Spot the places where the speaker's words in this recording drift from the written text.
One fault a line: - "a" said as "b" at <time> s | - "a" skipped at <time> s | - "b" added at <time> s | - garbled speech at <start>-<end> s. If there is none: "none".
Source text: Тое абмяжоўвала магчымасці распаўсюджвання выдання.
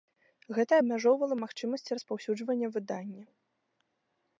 - "Тое" said as "Гэта" at 0.6 s